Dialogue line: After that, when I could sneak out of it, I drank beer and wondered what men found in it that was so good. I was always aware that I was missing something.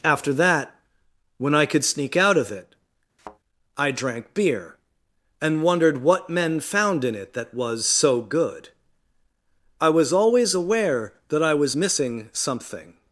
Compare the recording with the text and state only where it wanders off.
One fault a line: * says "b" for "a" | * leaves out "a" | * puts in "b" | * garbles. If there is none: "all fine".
all fine